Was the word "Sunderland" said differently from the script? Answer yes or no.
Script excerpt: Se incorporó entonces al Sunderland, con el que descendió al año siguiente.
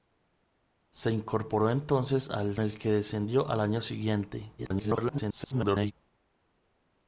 yes